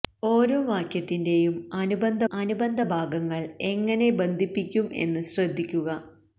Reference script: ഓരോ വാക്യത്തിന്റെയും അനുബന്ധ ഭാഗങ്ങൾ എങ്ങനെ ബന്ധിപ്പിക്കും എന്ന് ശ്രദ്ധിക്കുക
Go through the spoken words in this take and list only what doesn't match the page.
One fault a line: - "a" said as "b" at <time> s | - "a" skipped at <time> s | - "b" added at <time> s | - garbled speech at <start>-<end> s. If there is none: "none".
- "അനുബന്ധ" added at 2.3 s